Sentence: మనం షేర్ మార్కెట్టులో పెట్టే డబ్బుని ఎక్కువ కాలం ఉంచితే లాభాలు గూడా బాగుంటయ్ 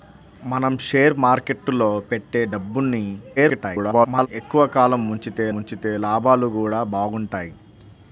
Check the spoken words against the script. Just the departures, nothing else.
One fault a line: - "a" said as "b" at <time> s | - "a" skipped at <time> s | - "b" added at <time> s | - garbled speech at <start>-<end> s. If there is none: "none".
- garbled speech at 3.4-4.3 s
- "ఉంచితే" added at 5.6 s